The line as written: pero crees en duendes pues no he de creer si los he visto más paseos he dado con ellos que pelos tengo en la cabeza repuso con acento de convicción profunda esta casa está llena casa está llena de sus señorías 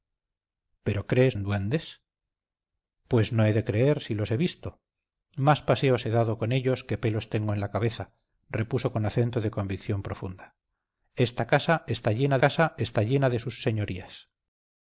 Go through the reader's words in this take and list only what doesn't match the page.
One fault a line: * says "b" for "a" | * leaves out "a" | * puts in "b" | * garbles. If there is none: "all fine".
all fine